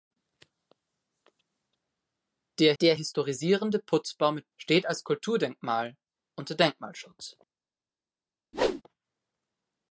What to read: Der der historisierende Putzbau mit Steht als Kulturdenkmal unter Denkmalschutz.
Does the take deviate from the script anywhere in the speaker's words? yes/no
no